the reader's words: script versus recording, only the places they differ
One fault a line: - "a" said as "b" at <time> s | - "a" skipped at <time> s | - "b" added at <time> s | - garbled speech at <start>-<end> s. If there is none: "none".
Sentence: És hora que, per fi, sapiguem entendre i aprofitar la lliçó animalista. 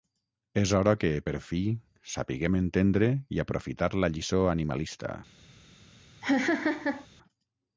none